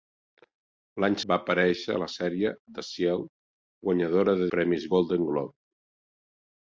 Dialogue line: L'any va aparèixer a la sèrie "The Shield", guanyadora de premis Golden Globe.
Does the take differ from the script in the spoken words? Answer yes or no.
no